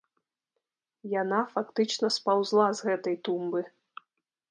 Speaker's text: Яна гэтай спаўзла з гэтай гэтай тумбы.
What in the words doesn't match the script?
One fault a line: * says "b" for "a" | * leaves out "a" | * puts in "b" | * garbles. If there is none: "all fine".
* says "фактычна" for "гэтай"
* leaves out "гэтай"